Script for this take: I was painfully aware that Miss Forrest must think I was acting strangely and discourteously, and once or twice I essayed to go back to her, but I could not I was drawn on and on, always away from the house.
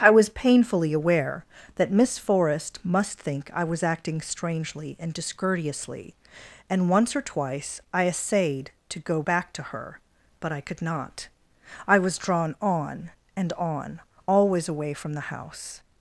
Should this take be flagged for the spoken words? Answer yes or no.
no